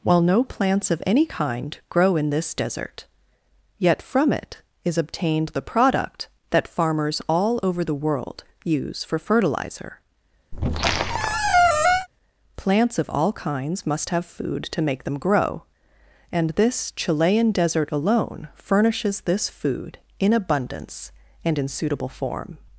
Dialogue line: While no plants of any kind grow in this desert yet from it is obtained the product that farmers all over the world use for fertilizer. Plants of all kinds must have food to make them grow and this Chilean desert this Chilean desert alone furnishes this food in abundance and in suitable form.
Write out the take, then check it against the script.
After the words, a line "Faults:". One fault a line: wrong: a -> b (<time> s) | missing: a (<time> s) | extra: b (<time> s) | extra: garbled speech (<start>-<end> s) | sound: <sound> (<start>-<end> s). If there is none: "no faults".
While no plants of any kind grow in this desert yet from it is obtained the product that farmers all over the world use for fertilizer. Plants of all kinds must have food to make them grow and this Chilean desert alone furnishes this food in abundance and in suitable form.
Faults:
sound: squeak (10.5-12.1 s)
missing: this Chilean desert (17.9 s)